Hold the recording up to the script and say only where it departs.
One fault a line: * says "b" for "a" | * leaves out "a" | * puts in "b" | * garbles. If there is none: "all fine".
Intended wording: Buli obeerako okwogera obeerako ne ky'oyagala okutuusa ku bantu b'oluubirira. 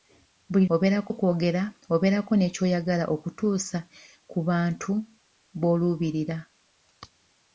all fine